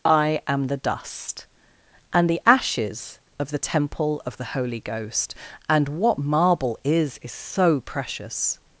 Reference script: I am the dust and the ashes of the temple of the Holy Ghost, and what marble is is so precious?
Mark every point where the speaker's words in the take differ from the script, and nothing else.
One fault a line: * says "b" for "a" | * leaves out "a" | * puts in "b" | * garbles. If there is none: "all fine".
all fine